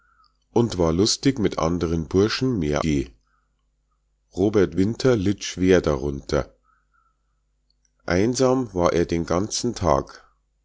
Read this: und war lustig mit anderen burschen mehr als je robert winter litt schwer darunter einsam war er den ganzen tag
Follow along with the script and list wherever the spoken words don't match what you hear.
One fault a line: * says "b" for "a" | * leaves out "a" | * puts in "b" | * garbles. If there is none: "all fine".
* leaves out "als"